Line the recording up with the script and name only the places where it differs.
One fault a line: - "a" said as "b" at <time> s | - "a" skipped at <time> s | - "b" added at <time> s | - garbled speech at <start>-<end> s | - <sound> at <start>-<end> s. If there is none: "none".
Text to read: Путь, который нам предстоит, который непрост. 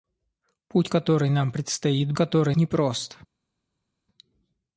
none